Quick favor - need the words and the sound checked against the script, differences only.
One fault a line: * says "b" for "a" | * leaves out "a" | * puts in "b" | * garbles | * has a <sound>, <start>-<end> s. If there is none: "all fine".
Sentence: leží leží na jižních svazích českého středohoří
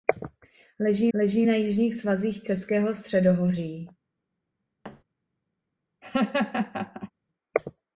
* has a thud, 4.8-5.0 s
* has a laugh, 6.0-7.1 s